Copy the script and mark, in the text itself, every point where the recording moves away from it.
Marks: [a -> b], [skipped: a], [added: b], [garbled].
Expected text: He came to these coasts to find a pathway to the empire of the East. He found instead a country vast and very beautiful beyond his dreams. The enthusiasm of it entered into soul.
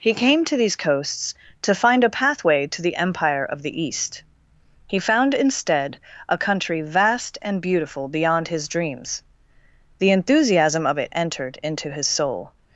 He came to these coasts to find a pathway to the empire of the East. He found instead a country vast and [skipped: very] beautiful beyond his dreams. The enthusiasm of it entered into [added: his] soul.